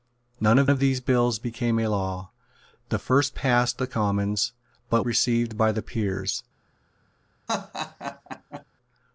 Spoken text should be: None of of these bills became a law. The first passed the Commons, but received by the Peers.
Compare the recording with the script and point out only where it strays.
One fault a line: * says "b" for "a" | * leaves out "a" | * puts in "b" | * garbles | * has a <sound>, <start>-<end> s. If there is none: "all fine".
* has a laugh, 7.5-8.6 s